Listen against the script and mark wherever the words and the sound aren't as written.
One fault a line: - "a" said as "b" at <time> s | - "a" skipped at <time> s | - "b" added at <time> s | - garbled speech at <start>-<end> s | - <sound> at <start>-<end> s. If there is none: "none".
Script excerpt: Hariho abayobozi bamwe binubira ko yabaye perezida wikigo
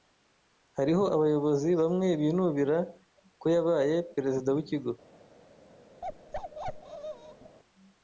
- bark at 6.0-7.6 s